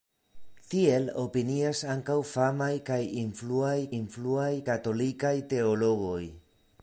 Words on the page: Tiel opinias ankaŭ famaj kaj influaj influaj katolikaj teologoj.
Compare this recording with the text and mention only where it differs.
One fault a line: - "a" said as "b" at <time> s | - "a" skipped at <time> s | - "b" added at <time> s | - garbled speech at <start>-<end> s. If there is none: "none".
none